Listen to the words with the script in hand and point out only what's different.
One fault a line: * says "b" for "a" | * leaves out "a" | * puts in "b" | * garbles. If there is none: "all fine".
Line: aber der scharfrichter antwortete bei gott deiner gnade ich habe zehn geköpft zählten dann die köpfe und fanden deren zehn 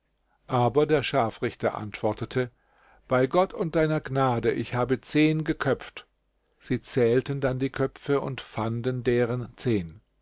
* puts in "und"
* puts in "sie"